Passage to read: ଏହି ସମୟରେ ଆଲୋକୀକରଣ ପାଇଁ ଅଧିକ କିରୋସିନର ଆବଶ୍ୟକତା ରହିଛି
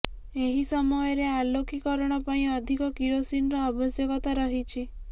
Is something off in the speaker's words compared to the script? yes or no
no